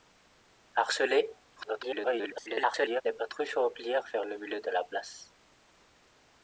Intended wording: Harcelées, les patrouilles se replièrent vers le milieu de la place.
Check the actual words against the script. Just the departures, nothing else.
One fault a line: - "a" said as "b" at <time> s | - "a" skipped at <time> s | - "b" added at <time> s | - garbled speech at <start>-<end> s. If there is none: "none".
- garbled speech at 1.6-3.0 s